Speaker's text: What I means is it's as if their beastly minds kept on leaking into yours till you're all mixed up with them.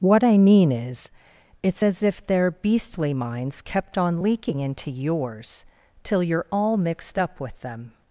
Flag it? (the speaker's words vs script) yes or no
yes